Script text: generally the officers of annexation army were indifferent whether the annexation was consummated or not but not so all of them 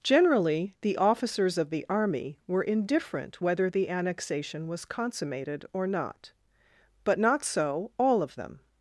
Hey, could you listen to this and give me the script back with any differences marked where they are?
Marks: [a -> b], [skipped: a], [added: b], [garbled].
generally the officers of [annexation -> the] army were indifferent whether the annexation was consummated or not but not so all of them